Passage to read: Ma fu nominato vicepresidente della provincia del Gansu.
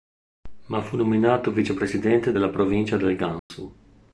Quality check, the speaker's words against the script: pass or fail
pass